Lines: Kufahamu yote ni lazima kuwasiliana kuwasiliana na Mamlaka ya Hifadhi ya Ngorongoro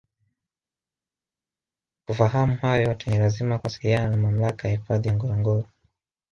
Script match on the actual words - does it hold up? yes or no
no